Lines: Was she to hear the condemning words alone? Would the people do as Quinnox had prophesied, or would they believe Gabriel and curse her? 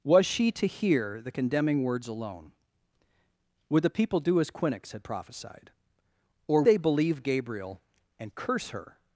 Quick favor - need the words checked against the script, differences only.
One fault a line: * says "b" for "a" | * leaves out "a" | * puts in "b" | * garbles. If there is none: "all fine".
* leaves out "would"